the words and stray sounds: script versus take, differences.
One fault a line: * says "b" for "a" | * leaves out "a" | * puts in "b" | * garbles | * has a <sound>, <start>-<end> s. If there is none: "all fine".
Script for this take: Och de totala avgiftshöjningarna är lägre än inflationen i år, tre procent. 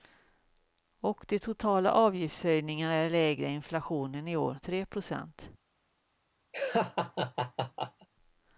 * has a laugh, 6.5-8.1 s